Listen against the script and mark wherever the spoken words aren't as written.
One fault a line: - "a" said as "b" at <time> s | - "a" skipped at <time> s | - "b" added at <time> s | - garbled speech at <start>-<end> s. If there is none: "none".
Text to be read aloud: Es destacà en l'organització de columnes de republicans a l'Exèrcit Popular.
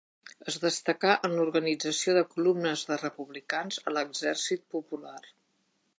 none